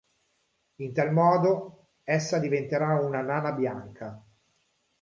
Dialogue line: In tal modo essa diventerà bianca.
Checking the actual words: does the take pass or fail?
fail